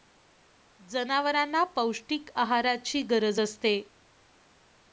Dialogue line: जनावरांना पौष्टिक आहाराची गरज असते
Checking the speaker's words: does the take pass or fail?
pass